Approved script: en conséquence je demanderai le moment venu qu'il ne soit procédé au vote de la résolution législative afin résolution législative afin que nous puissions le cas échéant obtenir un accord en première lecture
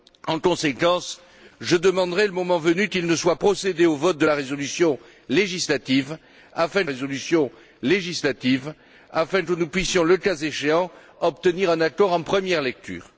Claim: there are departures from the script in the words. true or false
false